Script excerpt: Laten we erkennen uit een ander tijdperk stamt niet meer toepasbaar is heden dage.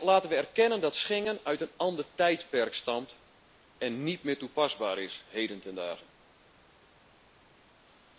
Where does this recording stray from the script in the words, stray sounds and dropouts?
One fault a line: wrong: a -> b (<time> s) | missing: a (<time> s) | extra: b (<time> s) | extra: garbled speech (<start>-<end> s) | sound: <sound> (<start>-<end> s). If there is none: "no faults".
extra: dat Schengen (0.8 s)
extra: en (3.8 s)
extra: ten (5.6 s)